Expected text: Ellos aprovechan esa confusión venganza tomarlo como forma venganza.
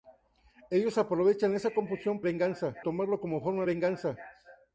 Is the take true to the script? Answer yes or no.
yes